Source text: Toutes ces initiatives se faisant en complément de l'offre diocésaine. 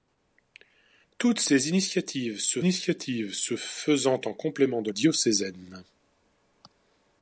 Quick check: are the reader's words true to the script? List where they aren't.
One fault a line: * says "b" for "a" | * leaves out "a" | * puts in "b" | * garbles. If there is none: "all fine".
* puts in "initiatives se"
* leaves out "l'offre"